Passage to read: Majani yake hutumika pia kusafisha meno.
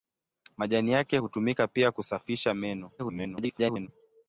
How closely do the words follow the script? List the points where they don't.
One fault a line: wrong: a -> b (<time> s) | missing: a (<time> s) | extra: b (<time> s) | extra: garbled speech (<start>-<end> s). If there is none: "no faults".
extra: garbled speech (3.0-3.9 s)